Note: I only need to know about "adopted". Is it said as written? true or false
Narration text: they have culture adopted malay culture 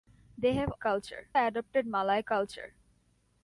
true